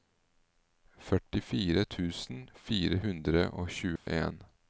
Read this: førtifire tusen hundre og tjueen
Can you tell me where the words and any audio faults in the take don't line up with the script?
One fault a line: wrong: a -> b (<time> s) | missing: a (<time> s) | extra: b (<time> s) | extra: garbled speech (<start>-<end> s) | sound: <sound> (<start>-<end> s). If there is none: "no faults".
extra: fire (2.7 s)
sound: dropout (4.0-4.1 s)